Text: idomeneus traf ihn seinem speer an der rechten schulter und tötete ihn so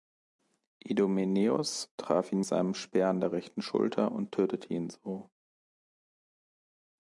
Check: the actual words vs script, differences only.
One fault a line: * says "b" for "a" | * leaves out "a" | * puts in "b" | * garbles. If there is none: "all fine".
all fine